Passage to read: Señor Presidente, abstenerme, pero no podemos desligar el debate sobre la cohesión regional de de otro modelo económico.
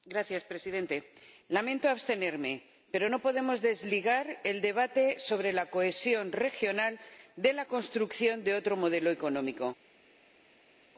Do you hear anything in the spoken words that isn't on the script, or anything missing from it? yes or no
yes